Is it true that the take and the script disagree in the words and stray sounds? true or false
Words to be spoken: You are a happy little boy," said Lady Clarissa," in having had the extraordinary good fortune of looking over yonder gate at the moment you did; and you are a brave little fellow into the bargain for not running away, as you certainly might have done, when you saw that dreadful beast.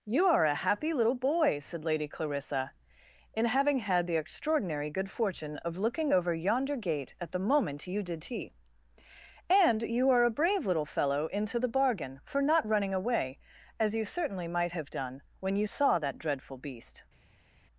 true